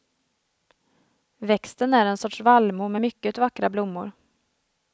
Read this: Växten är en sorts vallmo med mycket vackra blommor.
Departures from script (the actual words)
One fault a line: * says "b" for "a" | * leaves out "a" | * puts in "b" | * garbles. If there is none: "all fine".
all fine